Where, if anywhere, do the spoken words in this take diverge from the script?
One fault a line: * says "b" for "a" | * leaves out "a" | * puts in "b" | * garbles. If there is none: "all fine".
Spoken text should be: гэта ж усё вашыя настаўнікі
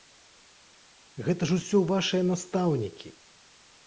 all fine